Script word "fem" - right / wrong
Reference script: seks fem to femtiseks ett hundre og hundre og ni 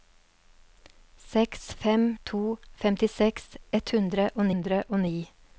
right